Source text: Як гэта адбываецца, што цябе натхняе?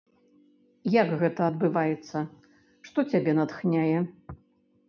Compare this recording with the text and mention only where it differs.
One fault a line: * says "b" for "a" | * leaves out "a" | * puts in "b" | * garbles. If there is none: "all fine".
all fine